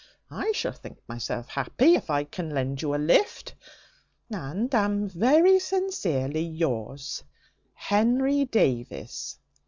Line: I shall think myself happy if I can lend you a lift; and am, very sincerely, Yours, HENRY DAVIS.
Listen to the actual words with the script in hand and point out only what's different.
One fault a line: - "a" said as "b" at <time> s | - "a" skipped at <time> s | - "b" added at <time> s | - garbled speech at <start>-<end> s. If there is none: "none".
none